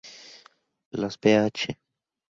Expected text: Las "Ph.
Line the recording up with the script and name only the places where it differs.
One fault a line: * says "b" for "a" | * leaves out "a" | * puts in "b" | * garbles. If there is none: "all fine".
all fine